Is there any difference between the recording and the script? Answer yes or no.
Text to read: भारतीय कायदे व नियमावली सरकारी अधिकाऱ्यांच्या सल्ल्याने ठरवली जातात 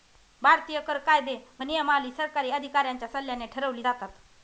yes